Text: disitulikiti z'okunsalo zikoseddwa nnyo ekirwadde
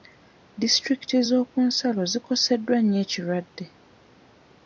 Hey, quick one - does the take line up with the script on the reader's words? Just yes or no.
yes